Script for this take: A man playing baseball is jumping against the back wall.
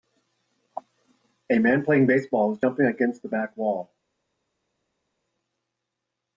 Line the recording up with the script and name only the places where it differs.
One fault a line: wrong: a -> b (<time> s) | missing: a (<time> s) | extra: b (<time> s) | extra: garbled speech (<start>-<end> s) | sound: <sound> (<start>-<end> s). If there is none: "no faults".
no faults